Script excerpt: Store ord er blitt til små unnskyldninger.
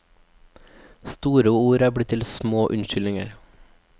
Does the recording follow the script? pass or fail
pass